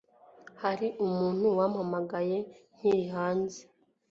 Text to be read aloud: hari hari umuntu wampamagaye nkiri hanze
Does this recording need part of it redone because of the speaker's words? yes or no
yes